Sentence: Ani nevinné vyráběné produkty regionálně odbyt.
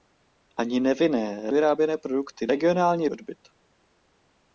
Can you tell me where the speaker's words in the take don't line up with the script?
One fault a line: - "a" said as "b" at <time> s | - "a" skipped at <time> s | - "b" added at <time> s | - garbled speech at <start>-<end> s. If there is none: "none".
none